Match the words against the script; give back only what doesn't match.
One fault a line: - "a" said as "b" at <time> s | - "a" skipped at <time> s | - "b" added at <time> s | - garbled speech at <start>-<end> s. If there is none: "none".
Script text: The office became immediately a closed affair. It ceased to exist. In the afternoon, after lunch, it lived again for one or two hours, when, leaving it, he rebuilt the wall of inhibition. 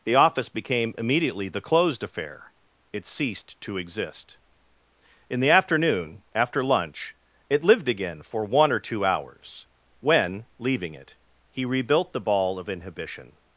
- "a" said as "the" at 1.5 s
- "wall" said as "ball" at 12.2 s